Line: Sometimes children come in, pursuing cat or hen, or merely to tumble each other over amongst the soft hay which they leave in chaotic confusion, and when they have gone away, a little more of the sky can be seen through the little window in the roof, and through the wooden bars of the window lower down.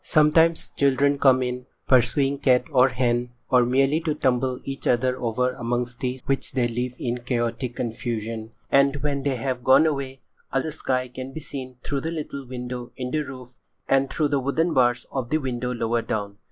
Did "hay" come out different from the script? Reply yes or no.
yes